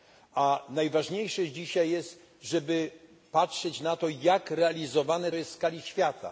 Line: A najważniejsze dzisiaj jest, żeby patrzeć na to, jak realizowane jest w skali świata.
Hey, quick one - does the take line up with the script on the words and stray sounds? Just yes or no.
yes